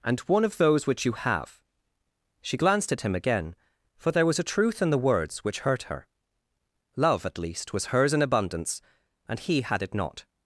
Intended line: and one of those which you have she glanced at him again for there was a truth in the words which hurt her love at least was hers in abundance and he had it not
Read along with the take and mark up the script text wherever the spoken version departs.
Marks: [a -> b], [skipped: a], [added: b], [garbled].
and one of those which you have she glanced at him again for there was a truth in the words which hurt her love at least was hers in abundance and he had it not